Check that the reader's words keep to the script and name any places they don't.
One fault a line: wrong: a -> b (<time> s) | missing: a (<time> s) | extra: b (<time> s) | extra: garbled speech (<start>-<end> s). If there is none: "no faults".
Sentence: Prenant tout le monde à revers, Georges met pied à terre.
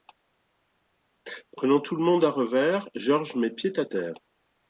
no faults